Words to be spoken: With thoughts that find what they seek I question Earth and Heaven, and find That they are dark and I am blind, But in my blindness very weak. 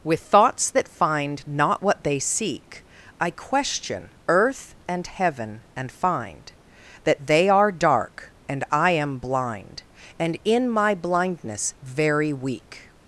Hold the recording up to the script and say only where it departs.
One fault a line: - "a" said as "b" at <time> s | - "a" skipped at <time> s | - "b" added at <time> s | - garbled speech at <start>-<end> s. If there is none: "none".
- "not" added at 1.4 s
- "But" said as "And" at 10.2 s